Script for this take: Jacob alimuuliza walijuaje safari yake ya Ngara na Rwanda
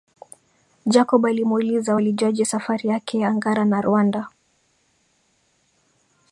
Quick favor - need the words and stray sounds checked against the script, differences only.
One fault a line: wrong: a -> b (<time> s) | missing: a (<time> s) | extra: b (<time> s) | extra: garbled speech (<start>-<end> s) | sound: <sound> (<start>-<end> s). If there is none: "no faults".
no faults